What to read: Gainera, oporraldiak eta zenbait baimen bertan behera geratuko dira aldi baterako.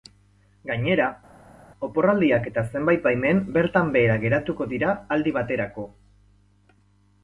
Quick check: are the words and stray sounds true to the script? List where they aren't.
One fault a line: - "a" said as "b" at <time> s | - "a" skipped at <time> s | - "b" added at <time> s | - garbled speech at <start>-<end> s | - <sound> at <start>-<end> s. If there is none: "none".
none